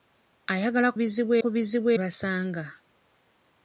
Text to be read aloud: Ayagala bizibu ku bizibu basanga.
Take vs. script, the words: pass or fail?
pass